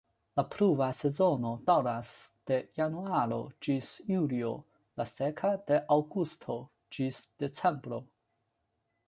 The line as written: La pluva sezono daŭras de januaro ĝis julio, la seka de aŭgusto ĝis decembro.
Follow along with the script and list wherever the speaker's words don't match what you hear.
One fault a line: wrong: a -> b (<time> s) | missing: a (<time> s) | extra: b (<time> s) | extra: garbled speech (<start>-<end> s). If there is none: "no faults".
no faults